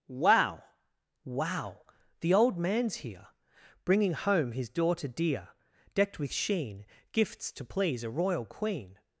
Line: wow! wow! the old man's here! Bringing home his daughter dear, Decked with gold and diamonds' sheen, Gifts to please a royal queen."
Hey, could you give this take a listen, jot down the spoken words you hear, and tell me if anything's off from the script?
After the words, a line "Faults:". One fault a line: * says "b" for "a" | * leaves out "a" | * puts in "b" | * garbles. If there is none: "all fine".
wow! wow! the old man's here! Bringing home his daughter dear, Decked with' sheen, Gifts to please a royal queen."
Faults:
* leaves out "gold and diamonds"